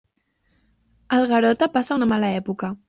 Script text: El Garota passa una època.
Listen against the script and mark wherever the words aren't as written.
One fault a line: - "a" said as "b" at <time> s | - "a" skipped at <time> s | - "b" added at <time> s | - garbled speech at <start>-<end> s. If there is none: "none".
- "mala" added at 2.1 s